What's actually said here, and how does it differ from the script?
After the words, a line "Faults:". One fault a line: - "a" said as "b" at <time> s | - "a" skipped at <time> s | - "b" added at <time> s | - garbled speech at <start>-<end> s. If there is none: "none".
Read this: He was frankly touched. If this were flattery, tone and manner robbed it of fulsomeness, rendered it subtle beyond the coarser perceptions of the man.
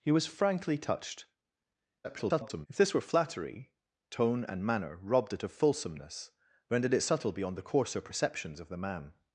He was frankly touched. [garbled] If this were flattery, tone and manner robbed it of fulsomeness, rendered it subtle beyond the coarser perceptions of the man.
Faults:
- garbled speech at 2.0-2.7 s